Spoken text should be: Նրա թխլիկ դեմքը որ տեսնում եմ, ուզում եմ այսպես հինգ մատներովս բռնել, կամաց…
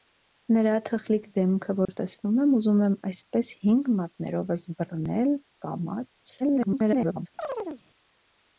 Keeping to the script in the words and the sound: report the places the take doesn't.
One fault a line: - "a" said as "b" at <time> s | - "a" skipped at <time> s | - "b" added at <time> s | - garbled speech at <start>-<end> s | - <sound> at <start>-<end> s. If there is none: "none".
- dropout at 1.9-1.9 s
- garbled speech at 6.4-7.3 s
- chirp at 7.4-7.8 s